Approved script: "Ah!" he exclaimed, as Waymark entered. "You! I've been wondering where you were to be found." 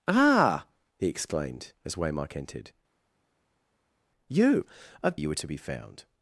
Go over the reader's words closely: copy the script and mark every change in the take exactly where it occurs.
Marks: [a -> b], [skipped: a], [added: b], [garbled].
"Ah!" he exclaimed, as Waymark entered. "You! I've [skipped: been wondering where] you were to be found."